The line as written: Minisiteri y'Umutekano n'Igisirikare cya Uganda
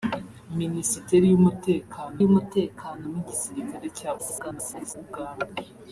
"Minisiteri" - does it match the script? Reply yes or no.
yes